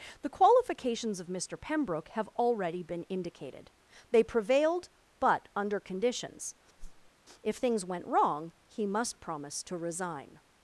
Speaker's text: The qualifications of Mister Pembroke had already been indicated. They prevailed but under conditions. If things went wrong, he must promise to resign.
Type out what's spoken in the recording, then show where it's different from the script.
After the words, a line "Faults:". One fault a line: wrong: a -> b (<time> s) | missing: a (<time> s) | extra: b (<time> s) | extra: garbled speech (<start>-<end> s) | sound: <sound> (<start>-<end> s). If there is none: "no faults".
The qualifications of Mister Pembroke have already been indicated. They prevailed but under conditions. If things went wrong, he must promise to resign.
Faults:
wrong: had -> have (2.1 s)
sound: whoosh (6.8-7.1 s)